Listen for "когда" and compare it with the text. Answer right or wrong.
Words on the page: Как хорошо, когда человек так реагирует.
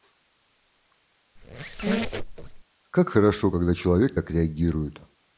right